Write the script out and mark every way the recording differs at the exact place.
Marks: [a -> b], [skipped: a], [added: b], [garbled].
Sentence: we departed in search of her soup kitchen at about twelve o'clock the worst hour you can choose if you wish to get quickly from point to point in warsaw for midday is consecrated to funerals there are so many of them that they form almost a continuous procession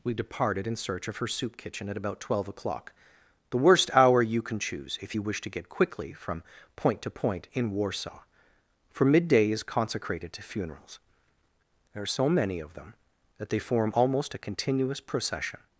we departed in search of her soup kitchen at about twelve o'clock the worst hour you can choose if you wish to get quickly from point to point in warsaw for midday is consecrated to funerals there are so many of them that they form almost a continuous procession